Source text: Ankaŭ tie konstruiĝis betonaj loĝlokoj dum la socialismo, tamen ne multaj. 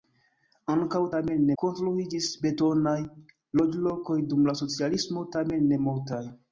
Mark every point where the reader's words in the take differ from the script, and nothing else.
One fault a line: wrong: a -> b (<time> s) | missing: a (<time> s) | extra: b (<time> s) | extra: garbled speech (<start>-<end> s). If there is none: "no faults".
wrong: tie -> tamen (1.2 s)